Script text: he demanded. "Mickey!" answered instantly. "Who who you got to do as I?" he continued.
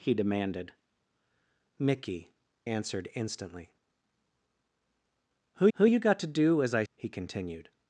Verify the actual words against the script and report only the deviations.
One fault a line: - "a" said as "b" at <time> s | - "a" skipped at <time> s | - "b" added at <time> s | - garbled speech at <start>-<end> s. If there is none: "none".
none